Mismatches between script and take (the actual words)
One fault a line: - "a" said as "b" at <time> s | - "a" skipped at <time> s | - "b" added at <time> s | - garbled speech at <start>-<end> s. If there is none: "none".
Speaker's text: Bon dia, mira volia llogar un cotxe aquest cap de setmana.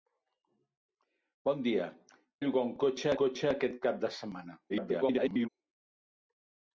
- "mira volia" skipped at 1.9 s
- "cotxe" added at 3.2 s
- garbled speech at 4.7-5.5 s